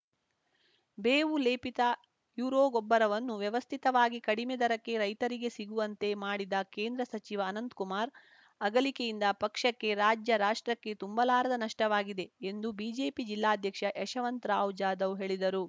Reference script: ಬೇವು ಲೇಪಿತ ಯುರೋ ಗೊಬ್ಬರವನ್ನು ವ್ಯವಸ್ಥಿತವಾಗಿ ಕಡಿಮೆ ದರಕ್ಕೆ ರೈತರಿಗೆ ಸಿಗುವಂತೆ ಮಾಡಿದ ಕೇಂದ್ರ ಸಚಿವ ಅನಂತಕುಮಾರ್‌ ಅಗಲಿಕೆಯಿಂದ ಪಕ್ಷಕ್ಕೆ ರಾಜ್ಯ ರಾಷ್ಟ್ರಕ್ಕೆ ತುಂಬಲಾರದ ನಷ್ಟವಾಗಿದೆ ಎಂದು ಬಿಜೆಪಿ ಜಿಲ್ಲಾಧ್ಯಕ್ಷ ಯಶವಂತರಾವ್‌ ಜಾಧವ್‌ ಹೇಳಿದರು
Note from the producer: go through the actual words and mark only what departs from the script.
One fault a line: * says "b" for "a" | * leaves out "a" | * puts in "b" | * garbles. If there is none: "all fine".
all fine